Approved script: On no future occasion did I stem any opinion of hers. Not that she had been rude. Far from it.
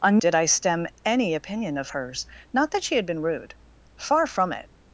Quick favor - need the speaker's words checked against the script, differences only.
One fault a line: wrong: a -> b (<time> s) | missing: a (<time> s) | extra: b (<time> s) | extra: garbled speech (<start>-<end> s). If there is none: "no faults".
missing: no future occasion (0.2 s)